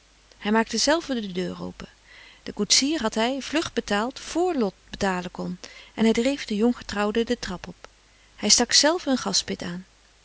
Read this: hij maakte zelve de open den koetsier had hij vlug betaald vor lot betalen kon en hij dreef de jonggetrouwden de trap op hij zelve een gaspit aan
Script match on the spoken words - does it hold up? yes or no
no